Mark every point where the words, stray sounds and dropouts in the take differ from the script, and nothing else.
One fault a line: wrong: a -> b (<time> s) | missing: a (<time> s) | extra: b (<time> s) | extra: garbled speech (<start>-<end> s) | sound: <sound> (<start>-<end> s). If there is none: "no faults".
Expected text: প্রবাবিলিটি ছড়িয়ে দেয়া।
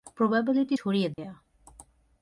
sound: dropout (1.1-1.2 s)